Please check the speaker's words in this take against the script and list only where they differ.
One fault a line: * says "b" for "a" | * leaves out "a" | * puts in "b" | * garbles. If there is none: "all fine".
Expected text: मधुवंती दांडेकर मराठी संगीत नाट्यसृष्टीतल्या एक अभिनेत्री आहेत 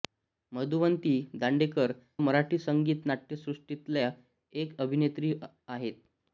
all fine